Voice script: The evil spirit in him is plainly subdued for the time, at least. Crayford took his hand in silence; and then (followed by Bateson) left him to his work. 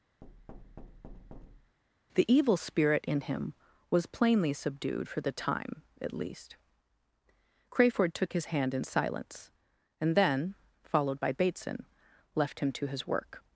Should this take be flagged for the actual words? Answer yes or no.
yes